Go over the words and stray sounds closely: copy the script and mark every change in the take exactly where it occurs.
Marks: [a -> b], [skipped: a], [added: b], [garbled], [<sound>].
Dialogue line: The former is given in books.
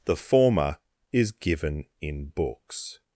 The former is given in books.